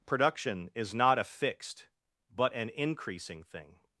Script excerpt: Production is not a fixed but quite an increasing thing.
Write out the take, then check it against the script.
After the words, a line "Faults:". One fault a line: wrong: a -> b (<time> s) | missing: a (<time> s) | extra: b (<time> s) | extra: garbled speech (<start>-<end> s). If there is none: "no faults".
Production is not a fixed but an increasing thing.
Faults:
missing: quite (2.5 s)